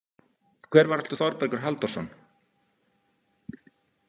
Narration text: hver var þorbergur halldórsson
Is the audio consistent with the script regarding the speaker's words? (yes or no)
no